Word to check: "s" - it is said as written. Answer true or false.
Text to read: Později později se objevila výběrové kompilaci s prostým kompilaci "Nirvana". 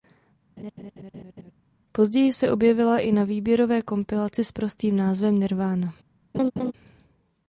true